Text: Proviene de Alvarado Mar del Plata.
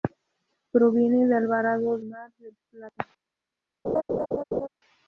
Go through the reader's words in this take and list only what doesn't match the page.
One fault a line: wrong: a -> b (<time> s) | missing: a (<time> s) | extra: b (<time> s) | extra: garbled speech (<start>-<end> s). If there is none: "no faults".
no faults